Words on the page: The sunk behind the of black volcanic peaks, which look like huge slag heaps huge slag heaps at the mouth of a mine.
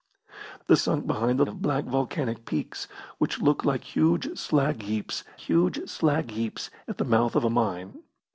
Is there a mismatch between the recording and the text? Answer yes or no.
no